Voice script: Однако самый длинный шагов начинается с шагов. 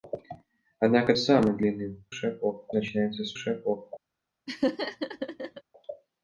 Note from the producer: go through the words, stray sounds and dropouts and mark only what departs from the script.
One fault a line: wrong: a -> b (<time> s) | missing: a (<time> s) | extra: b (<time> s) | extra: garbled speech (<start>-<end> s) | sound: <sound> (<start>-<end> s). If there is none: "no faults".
sound: laugh (4.5-5.6 s)